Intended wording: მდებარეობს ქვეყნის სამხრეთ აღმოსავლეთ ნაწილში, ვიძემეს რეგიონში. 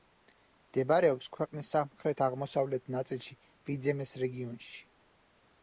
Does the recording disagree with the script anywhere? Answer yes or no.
no